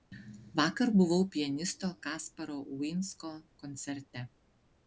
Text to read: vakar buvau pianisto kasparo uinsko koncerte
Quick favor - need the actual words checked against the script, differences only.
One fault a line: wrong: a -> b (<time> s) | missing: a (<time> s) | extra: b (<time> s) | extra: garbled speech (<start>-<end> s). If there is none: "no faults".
no faults